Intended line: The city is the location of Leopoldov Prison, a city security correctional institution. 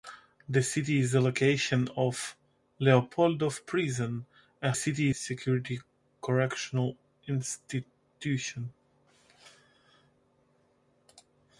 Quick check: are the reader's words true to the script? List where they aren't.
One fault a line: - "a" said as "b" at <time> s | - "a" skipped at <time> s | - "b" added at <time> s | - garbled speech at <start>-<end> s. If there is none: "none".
none